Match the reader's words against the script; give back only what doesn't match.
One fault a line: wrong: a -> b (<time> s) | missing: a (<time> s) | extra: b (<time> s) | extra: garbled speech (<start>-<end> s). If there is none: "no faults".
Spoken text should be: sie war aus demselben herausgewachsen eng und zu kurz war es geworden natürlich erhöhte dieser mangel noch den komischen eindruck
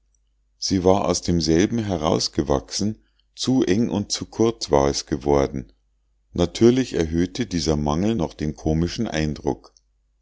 extra: zu (3.4 s)